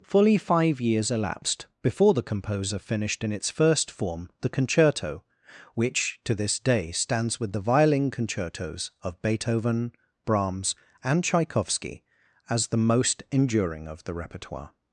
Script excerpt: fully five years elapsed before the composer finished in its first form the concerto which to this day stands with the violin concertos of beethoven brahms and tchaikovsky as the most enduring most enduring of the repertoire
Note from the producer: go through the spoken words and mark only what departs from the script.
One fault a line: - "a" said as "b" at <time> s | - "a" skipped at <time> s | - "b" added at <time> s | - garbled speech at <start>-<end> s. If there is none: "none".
- "most enduring" skipped at 13.9 s